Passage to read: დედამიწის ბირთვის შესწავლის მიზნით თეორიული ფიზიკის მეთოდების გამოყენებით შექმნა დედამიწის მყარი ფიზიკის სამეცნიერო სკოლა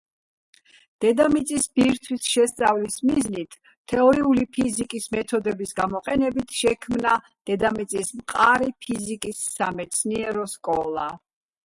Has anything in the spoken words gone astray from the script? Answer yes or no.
no